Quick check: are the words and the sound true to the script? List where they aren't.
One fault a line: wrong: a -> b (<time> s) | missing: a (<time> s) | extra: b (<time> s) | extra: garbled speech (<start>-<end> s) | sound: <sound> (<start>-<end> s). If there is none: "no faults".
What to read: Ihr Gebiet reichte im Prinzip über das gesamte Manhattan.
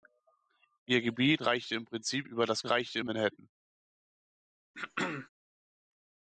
wrong: gesamte -> reichte (2.7 s)
sound: throat clearing (4.7-5.3 s)